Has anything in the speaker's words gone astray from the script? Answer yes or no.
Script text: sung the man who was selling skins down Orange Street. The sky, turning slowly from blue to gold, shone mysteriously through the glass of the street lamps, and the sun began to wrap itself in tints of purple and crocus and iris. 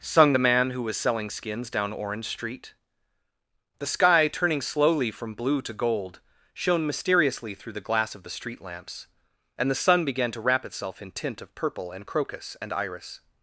yes